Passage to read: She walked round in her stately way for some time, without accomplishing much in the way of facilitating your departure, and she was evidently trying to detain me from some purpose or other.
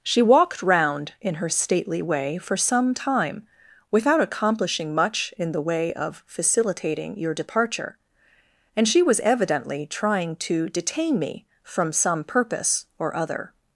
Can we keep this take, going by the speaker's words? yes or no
yes